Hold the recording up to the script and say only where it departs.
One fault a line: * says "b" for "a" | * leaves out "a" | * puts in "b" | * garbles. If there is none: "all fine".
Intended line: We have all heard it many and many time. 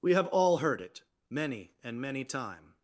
all fine